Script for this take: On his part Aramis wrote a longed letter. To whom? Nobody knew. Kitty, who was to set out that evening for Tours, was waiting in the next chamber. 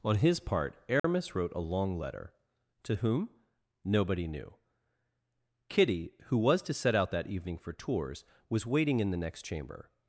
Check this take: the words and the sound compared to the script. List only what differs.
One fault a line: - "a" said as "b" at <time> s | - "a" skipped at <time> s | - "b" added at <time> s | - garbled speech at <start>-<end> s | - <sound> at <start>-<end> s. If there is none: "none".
- dropout at 1.0-1.0 s
- "longed" said as "long" at 1.7 s